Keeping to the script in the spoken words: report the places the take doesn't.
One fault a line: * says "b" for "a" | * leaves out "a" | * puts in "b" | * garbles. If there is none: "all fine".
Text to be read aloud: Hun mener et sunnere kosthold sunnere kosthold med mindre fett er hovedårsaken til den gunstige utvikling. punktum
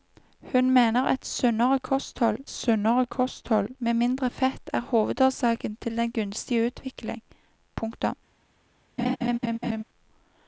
all fine